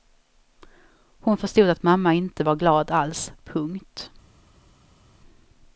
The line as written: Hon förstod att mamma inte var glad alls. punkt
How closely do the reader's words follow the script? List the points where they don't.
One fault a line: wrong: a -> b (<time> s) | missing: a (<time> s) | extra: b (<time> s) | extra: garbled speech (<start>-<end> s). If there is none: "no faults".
no faults